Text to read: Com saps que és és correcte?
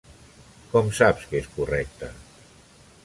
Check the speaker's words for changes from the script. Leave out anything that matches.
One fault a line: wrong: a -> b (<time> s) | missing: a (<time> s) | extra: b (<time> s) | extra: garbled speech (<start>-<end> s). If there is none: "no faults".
missing: és (1.5 s)